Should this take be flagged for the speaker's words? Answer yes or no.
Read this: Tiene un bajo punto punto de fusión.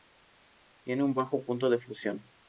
yes